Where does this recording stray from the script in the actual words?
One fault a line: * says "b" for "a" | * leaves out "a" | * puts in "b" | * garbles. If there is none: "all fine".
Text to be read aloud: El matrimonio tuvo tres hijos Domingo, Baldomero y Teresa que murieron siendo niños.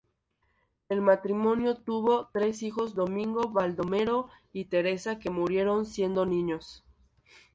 all fine